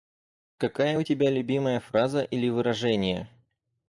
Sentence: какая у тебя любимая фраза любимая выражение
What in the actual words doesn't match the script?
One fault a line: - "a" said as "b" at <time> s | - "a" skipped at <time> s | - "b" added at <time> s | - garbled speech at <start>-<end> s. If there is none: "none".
- "любимая" said as "или" at 2.2 s